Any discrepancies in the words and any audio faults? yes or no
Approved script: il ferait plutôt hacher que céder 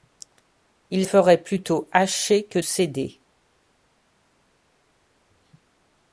no